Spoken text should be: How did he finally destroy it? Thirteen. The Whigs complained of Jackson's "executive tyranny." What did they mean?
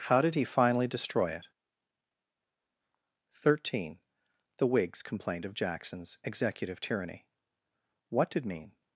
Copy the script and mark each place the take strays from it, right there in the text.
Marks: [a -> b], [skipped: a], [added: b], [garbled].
How did he finally destroy it? Thirteen. The Whigs complained of Jackson's "executive tyranny." What did [skipped: they] mean?